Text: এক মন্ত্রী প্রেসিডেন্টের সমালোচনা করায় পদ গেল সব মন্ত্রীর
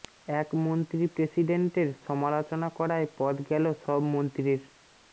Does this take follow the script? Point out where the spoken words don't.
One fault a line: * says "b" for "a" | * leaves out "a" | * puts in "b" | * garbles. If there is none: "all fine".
all fine